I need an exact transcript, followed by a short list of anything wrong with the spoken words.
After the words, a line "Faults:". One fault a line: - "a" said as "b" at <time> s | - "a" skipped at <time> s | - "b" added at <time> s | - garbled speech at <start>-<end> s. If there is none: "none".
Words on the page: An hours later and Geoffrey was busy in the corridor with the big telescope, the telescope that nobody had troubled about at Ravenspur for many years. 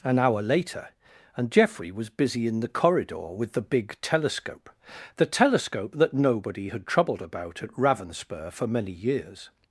An hour later and Geoffrey was busy in the corridor with the big telescope, the telescope that nobody had troubled about at Ravenspur for many years.
Faults:
- "hours" said as "hour" at 0.2 s